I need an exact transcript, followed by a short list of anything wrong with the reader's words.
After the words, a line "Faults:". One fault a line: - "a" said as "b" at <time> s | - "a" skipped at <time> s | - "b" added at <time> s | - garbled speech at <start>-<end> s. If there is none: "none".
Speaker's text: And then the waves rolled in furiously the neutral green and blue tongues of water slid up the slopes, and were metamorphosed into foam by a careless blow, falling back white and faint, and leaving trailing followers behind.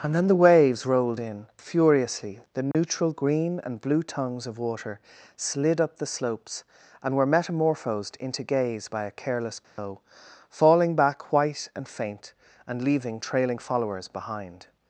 And then the waves rolled in furiously the neutral green and blue tongues of water slid up the slopes, and were metamorphosed into gaze by a careless blow, falling back white and faint, and leaving trailing followers behind.
Faults:
- "foam" said as "gaze" at 8.4 s